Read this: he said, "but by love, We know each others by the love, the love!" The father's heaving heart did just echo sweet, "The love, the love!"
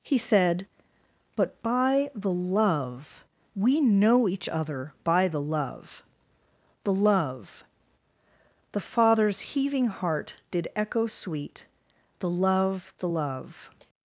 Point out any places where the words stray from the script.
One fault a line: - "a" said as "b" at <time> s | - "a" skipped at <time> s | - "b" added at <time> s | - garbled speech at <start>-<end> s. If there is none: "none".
- "the" added at 2.1 s
- "others" said as "other" at 4.5 s
- "just" skipped at 10.7 s